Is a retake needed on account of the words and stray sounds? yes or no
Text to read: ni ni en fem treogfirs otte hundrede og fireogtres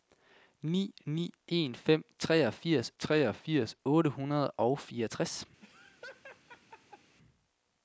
yes